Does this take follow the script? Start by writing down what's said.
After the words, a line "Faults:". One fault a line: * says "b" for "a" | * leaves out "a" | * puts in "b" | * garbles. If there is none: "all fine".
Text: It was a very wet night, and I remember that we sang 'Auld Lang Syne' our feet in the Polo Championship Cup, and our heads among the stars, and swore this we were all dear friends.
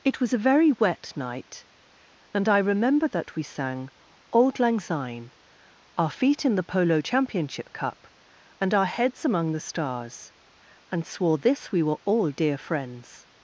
It was a very wet night, and I remember that we sang 'Auld Lang Syne' our feet in the Polo Championship Cup, and our heads among the stars, and swore this we were all dear friends.
Faults:
all fine